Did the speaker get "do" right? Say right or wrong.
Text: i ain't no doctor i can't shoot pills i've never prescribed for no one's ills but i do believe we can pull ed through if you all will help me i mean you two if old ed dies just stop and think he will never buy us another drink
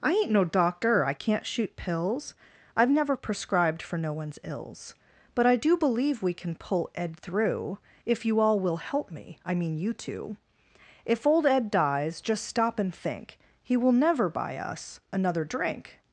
right